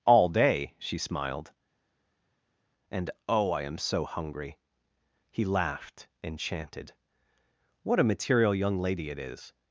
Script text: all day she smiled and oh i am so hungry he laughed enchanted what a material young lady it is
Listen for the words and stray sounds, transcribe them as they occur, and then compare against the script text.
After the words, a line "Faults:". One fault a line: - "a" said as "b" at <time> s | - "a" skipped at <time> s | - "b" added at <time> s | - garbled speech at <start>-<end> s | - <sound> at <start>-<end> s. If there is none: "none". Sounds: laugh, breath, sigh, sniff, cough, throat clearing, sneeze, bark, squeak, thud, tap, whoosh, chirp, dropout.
all day she smiled and oh i am so hungry he laughed enchanted what a material young lady it is
Faults:
none